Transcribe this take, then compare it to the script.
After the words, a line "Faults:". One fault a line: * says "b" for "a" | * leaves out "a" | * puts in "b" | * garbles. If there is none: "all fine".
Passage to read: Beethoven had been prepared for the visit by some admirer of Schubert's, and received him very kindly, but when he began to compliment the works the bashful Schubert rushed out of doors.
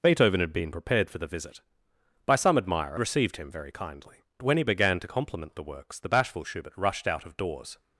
Beethoven had been prepared for the visit by some admirer received him very kindly, when he began to compliment the works the bashful Schubert rushed out of doors.
Faults:
* leaves out "of Schubert's and"
* leaves out "but"